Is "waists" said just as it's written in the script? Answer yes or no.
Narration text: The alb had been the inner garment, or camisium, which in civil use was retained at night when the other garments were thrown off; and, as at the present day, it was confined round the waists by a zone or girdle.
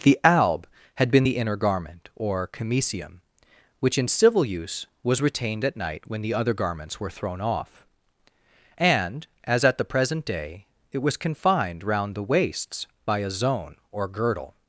yes